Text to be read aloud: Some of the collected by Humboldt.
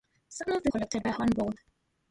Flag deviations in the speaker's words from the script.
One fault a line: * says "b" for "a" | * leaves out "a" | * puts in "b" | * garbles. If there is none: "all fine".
all fine